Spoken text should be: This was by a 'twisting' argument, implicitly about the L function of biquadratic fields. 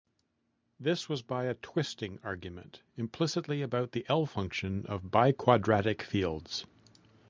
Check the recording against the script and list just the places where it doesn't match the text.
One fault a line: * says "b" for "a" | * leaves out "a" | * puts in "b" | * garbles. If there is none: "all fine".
all fine